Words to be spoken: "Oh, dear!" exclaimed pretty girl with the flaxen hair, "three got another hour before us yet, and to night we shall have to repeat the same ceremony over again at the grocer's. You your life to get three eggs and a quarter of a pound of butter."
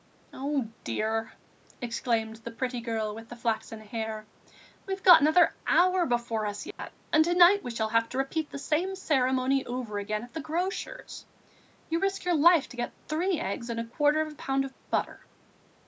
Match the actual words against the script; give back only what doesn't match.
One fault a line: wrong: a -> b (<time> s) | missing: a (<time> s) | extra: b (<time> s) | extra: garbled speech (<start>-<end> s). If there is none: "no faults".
extra: the (2.4 s)
wrong: three -> we've (4.9 s)
extra: risk (12.0 s)